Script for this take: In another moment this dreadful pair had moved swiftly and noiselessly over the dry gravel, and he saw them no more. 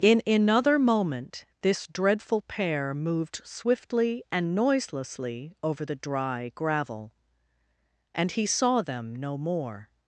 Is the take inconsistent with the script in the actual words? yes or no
yes